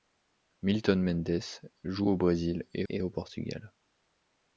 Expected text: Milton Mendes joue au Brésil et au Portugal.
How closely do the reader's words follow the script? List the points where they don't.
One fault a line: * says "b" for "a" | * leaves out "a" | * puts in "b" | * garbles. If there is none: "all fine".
* puts in "et"